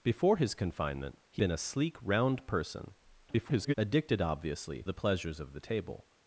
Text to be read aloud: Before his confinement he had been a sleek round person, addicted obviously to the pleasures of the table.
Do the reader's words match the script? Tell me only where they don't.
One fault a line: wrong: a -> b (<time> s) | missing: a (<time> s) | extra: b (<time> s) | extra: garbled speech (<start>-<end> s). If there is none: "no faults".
missing: had (1.4 s)
extra: garbled speech (3.3-3.7 s)
missing: to (4.8 s)